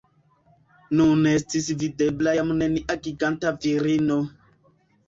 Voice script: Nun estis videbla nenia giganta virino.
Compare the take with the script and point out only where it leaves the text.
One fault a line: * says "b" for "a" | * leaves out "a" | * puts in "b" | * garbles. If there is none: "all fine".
* puts in "jam"